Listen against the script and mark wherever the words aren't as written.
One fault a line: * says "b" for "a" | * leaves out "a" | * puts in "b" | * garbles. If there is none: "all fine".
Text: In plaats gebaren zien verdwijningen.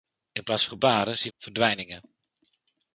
all fine